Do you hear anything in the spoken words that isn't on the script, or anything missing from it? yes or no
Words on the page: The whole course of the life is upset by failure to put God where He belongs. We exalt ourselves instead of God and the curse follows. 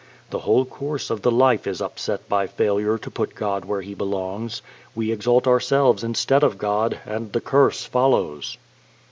no